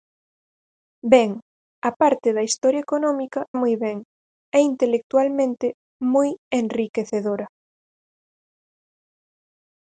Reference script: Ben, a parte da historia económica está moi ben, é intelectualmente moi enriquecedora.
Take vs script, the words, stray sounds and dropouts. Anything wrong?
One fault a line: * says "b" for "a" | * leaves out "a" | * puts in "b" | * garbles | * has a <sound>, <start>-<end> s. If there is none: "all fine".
* leaves out "está"